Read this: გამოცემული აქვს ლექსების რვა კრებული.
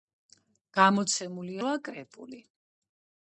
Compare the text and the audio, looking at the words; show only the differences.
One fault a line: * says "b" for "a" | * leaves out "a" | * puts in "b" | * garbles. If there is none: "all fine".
* leaves out "აქვს ლექსების"